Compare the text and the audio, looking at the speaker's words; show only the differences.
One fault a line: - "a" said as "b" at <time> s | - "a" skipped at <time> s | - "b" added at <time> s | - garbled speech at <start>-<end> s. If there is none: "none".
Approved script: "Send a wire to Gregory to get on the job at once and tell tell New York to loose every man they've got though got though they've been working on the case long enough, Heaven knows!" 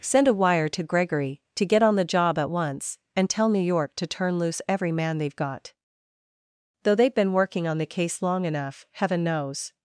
- "tell" skipped at 3.5 s
- "turn" added at 4.1 s
- "got though" skipped at 7.0 s